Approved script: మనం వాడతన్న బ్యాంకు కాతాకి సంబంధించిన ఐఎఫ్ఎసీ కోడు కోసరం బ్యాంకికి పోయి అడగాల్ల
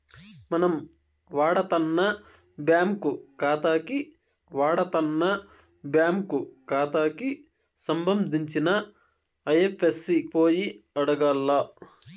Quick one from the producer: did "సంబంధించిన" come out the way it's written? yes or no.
no